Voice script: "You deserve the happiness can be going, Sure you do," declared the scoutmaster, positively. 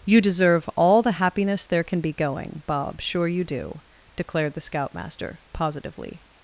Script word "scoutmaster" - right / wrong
right